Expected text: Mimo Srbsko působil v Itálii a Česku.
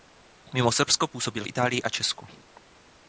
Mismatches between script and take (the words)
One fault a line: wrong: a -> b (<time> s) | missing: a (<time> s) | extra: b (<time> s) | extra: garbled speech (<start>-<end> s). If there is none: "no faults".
no faults